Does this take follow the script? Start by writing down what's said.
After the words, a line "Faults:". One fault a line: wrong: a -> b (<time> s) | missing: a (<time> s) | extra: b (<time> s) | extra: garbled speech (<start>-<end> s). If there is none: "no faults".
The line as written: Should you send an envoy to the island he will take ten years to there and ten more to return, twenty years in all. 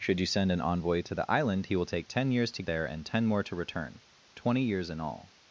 Should you send an envoy to the island he will take ten years to there and ten more to return, twenty years in all.
Faults:
no faults